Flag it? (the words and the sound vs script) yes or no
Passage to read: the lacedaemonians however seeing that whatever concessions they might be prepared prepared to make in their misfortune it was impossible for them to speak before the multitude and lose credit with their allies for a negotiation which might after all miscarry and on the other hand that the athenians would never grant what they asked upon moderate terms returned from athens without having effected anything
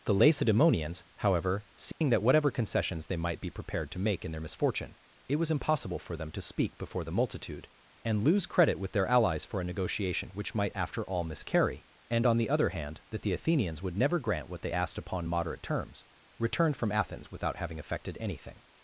yes